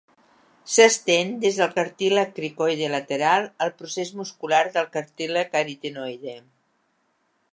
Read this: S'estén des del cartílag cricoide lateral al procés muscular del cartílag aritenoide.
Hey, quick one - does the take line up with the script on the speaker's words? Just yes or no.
yes